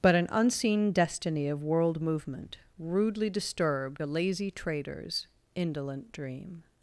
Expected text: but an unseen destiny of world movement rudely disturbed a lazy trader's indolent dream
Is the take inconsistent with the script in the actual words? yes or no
no